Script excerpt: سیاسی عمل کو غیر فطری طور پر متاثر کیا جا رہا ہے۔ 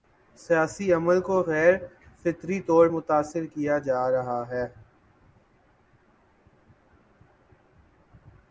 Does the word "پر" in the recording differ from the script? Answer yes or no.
yes